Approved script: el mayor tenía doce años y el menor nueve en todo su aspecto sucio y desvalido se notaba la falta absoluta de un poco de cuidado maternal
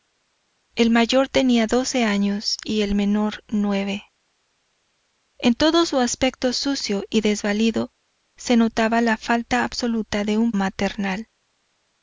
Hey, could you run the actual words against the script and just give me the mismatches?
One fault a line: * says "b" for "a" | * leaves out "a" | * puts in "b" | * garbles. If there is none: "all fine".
* leaves out "poco de cuidado"